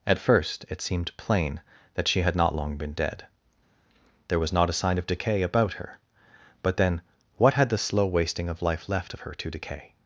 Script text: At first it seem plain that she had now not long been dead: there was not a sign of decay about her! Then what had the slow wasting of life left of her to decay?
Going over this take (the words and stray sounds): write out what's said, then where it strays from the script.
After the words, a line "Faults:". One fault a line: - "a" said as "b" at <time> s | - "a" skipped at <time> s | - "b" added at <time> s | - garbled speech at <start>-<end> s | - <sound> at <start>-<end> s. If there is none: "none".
At first it seemed plain that she had not long been dead: there was not a sign of decay about her! But then what had the slow wasting of life left of her to decay?
Faults:
- "seem" said as "seemed" at 0.8 s
- "now" skipped at 2.4 s
- "But" added at 6.6 s